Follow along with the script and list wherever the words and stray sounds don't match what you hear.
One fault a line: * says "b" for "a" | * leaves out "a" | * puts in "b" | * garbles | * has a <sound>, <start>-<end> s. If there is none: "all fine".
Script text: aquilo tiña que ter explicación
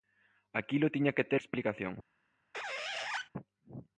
* has a squeak, 2.5-3.3 s